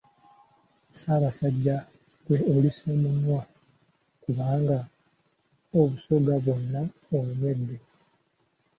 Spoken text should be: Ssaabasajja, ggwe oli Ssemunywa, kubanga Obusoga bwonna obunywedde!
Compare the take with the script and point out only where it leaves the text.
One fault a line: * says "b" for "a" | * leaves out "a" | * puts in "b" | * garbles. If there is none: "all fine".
all fine